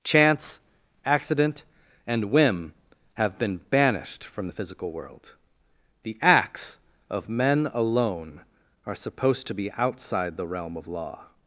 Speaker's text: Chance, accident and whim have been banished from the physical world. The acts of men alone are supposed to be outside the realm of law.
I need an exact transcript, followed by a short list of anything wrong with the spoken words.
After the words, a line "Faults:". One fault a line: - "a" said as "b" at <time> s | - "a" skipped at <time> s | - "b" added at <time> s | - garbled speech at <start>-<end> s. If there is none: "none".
Chance, accident and whim have been banished from the physical world. The acts of men alone are supposed to be outside the realm of law.
Faults:
none